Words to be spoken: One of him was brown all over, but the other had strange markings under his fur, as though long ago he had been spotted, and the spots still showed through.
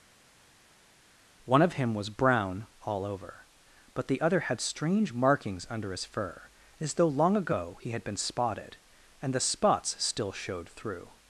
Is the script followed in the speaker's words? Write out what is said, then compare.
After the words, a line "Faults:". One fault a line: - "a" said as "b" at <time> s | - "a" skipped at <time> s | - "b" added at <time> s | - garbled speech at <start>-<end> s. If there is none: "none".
One of him was brown all over, but the other had strange markings under his fur, as though long ago he had been spotted, and the spots still showed through.
Faults:
none